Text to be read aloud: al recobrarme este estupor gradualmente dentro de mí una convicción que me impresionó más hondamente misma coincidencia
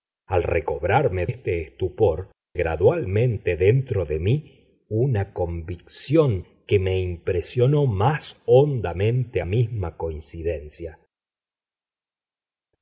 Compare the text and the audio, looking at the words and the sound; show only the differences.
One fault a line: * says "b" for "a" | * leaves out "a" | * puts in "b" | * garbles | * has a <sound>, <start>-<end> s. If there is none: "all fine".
all fine